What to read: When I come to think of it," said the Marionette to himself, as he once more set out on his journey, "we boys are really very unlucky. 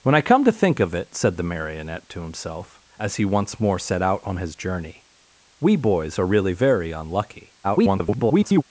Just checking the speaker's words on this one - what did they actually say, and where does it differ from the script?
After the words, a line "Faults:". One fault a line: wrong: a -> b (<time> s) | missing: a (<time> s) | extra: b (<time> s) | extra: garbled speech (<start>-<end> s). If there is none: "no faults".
When I come to think of it," said the Marionette to himself, as he once more set out on his journey, "we boys are really very unlucky. [garbled]
Faults:
extra: garbled speech (7.6-8.6 s)